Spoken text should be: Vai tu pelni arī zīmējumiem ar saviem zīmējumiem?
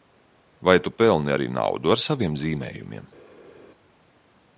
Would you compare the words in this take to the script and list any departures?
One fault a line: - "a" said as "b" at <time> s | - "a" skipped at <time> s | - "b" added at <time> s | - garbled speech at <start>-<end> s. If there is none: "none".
- "zīmējumiem" said as "naudu" at 1.6 s